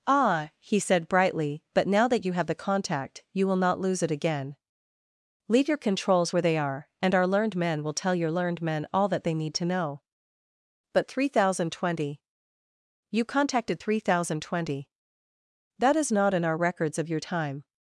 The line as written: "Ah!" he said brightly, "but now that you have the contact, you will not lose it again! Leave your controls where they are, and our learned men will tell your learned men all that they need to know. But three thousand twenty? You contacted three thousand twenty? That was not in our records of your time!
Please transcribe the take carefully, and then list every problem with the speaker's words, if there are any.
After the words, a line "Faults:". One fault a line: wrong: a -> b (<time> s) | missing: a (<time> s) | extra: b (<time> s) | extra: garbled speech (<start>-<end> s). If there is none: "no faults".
"Ah!" he said brightly, "but now that you have the contact, you will not lose it again! Leave your controls where they are, and our learned men will tell your learned men all that they need to know. But three thousand twenty? You contacted three thousand twenty? That is not in our records of your time!
Faults:
wrong: was -> is (16.0 s)